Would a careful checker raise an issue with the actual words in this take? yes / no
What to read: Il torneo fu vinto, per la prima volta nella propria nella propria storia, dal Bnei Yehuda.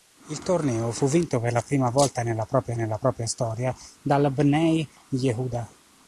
no